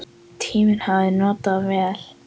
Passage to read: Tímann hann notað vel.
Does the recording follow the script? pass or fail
fail